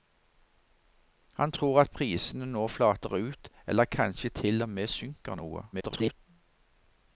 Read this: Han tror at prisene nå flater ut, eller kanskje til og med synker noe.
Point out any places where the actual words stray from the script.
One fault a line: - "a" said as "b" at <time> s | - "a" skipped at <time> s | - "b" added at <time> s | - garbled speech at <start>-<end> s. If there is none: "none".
- garbled speech at 5.7-6.2 s